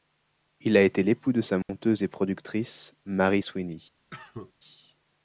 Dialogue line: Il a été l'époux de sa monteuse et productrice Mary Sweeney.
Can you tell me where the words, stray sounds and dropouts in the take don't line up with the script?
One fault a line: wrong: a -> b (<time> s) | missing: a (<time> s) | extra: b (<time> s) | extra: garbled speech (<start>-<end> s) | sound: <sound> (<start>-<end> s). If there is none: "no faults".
sound: dropout (1.6-1.7 s)
sound: cough (4.1-4.5 s)